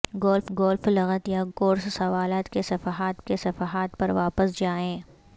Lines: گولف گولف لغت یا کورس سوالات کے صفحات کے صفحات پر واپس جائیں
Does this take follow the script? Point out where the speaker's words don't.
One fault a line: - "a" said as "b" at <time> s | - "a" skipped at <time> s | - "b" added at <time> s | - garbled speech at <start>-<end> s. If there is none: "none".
none